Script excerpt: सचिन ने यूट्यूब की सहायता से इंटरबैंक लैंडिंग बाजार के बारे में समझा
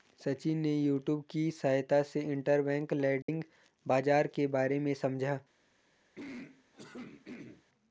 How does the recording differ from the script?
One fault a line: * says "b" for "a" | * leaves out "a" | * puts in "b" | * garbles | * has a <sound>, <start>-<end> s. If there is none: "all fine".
* has a dropout, 3.2-3.3 s
* has a throat clearing, 6.2-7.6 s